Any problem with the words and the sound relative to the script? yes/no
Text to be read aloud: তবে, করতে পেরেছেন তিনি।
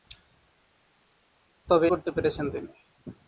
no